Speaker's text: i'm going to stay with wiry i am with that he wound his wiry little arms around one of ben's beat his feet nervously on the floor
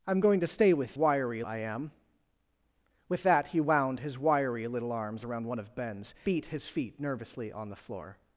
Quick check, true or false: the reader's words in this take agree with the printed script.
true